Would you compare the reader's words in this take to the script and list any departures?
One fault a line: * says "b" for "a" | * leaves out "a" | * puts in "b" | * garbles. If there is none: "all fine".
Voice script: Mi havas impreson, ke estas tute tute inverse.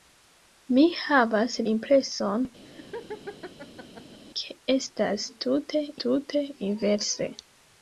all fine